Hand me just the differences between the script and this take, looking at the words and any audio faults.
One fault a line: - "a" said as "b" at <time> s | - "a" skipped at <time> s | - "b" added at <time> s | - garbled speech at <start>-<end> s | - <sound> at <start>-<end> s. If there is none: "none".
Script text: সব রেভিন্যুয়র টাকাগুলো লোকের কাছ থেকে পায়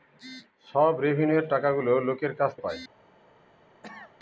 - "থেকে" skipped at 2.5 s
- cough at 3.8-4.2 s